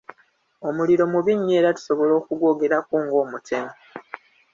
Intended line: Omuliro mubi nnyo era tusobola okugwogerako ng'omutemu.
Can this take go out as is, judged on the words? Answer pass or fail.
pass